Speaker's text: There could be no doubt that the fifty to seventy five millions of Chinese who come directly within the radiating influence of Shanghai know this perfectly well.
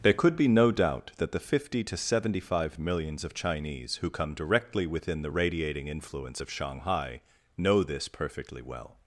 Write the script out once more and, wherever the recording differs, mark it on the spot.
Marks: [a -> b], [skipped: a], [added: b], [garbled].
There could be no doubt that the fifty to seventy five millions of Chinese who come directly within the radiating influence of Shanghai know this perfectly well.